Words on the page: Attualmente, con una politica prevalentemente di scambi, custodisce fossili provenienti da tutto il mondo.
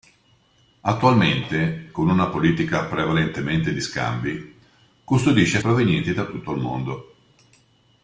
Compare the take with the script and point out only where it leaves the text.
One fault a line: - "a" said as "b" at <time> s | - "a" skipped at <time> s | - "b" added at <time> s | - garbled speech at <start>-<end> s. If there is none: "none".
- "fossili" skipped at 5.6 s